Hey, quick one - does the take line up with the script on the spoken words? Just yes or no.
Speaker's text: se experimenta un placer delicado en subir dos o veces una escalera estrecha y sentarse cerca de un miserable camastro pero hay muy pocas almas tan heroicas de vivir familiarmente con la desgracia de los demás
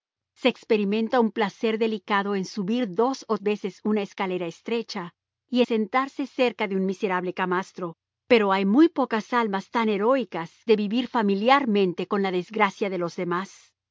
yes